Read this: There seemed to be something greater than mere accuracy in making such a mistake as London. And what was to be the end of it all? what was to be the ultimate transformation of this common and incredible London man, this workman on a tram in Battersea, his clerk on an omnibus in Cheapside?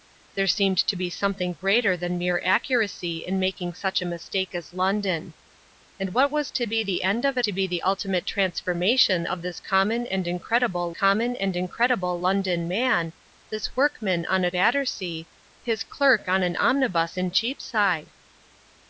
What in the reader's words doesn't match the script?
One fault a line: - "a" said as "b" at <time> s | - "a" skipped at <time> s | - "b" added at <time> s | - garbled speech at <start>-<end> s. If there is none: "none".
- "all what was" skipped at 7.5 s
- "common and incredible" added at 10.9 s
- "tram in" skipped at 14.5 s